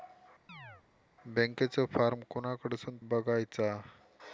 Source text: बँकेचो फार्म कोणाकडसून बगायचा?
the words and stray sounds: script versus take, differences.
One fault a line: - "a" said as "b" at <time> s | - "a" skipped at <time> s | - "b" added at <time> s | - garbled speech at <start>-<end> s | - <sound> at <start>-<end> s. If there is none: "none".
- chirp at 0.5-0.8 s